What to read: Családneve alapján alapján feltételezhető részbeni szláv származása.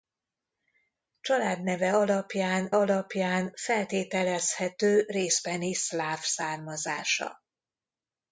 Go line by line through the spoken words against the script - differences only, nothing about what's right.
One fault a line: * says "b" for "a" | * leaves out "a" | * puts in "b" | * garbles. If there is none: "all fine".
all fine